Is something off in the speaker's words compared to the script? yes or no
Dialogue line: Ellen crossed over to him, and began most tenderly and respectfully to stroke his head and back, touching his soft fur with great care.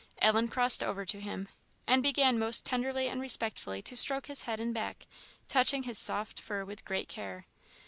no